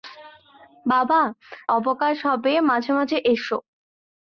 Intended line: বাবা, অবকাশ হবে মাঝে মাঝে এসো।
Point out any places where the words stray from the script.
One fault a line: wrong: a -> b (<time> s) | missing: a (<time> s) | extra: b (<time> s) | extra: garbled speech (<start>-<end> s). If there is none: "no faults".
no faults